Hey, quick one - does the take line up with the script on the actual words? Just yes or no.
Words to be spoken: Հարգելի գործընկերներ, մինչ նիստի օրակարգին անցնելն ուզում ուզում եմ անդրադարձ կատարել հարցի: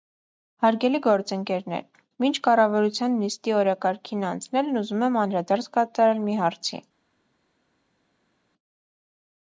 no